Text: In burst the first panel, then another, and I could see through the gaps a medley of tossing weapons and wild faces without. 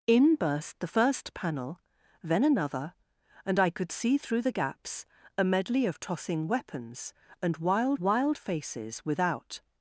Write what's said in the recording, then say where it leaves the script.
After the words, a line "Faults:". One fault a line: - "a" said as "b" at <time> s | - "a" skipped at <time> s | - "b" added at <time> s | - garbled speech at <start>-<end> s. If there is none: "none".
In burst the first panel, then another, and I could see through the gaps a medley of tossing weapons and wild wild faces without.
Faults:
- "wild" added at 8.0 s